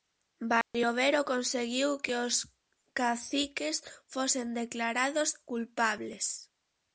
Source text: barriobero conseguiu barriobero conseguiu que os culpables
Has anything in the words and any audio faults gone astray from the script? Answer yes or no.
yes